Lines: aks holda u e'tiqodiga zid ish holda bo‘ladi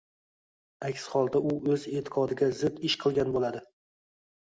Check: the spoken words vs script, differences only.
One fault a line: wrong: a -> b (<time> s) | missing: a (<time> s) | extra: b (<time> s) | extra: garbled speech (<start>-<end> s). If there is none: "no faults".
extra: o‘z (1.7 s)
wrong: holda -> qilgan (3.0 s)